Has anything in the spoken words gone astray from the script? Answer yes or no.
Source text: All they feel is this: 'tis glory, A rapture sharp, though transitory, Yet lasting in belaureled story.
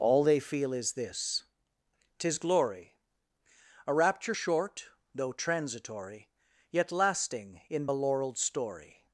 yes